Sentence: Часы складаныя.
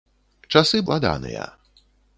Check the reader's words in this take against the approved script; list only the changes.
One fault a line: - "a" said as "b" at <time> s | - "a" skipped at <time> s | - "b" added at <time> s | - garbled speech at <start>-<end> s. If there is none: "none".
none